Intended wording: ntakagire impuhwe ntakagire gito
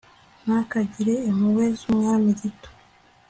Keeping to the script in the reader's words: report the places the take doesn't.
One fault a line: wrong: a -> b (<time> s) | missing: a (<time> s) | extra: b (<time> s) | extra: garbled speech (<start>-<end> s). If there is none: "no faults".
wrong: ntakagire -> z,umwami (1.8 s)